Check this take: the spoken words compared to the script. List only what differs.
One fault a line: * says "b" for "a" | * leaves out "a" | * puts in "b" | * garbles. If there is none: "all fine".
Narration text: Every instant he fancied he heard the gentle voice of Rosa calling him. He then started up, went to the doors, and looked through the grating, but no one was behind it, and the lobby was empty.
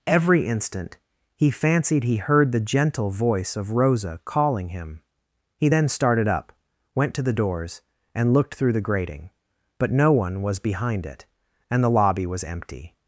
all fine